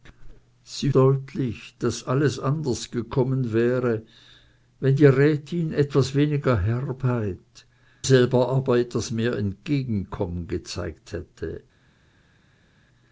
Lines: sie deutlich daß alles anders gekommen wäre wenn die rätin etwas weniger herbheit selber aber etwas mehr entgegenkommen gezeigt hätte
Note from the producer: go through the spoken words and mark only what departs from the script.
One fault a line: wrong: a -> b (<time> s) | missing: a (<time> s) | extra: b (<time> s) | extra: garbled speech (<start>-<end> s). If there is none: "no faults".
no faults